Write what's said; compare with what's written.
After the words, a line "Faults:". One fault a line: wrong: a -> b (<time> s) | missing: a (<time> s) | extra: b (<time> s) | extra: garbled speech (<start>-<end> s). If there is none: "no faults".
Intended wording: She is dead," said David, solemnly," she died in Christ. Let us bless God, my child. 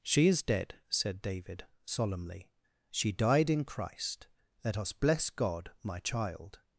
She is dead," said David, solemnly," she died in Christ. Let us bless God, my child.
Faults:
no faults